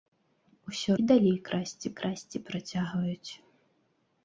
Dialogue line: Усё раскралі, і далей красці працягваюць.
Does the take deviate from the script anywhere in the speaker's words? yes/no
yes